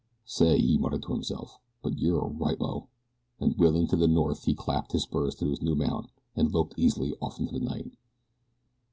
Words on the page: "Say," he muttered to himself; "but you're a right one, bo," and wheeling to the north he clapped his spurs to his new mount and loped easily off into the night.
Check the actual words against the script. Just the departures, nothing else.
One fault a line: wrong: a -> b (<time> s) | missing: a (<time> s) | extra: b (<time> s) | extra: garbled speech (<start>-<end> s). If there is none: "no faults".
missing: one (2.6 s)